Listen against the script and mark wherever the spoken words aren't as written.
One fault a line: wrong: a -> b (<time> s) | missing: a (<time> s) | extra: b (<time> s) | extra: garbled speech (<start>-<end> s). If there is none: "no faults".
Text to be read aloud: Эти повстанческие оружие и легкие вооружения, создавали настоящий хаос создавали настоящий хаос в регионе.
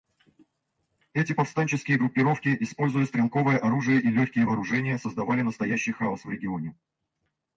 extra: группировки используя стрелковое (2.0 s)
missing: создавали настоящий хаос (6.2 s)